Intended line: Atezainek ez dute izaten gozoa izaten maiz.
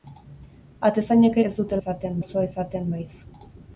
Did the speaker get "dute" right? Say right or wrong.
right